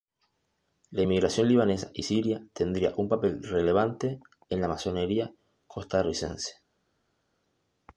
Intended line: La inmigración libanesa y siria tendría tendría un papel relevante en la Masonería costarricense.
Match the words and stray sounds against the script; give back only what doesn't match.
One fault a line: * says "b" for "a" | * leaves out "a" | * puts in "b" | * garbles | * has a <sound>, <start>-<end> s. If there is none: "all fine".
* leaves out "tendría"